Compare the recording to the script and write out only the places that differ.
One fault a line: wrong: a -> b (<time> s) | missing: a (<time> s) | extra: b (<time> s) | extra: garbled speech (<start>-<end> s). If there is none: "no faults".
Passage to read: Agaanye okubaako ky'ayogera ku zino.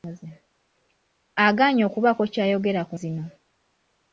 no faults